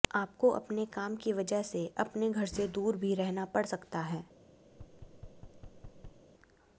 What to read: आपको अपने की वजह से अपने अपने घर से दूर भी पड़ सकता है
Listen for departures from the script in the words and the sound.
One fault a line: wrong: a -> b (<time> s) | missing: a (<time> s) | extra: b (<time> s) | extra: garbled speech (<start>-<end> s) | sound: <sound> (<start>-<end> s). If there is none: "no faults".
extra: काम (0.8 s)
missing: अपने (2.3 s)
extra: रहना (3.1 s)
sound: thud (4.7-6.2 s)